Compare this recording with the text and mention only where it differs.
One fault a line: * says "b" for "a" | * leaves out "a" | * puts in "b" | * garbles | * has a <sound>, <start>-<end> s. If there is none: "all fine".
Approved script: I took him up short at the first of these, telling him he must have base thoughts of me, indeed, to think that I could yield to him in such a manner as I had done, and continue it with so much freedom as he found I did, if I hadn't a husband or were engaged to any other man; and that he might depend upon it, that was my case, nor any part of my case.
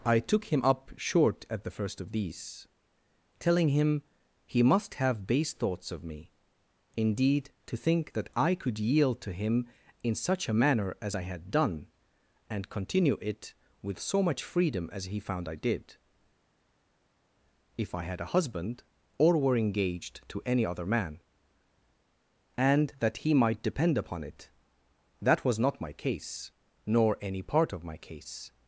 * says "had" for "hadn't"
* puts in "not"